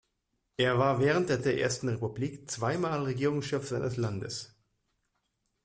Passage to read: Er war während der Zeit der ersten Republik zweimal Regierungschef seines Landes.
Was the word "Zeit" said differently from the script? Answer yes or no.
yes